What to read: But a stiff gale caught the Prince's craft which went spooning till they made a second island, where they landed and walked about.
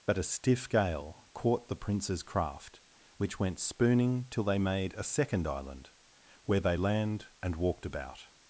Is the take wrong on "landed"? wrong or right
wrong